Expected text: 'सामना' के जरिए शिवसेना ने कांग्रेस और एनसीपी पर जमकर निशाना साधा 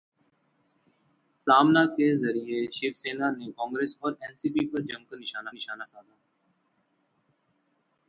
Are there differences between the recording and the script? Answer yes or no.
yes